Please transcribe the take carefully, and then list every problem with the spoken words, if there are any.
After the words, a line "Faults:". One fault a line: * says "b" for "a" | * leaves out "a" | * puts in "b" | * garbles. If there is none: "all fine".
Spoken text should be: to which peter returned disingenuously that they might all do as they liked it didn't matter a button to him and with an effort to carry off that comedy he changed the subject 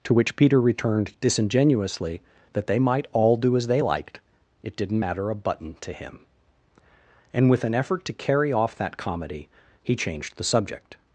to which peter returned disingenuously that they might all do as they liked it didn't matter a button to him and with an effort to carry off that comedy he changed the subject
Faults:
all fine